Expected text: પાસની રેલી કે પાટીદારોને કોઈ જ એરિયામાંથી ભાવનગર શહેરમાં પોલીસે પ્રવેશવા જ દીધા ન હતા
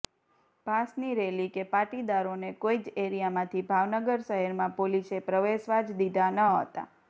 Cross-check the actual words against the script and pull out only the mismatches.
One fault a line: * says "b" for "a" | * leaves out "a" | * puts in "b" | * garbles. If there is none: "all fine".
all fine